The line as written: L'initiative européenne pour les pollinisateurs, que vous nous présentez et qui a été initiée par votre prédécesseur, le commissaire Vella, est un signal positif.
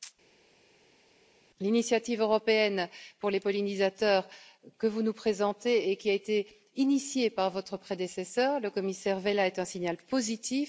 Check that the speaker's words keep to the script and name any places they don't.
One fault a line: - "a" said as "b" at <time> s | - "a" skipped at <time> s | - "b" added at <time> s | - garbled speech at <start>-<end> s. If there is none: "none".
none